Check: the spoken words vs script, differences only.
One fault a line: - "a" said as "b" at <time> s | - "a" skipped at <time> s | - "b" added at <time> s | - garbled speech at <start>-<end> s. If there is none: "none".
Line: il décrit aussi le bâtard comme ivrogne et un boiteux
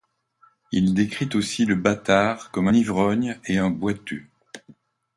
none